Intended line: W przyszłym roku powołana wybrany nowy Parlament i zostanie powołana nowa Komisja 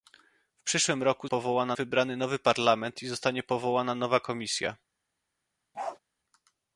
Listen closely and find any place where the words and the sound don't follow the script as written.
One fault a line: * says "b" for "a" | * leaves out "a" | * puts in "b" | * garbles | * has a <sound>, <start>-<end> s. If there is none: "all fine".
* has a bark, 5.7-6.0 s